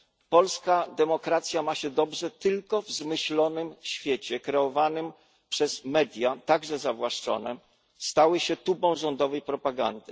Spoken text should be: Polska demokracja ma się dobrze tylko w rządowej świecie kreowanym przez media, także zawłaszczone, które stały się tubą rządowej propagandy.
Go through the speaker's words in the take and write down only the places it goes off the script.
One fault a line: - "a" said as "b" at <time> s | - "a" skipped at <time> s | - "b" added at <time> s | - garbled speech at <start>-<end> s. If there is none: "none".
- "rządowej" said as "zmyślonym" at 2.9 s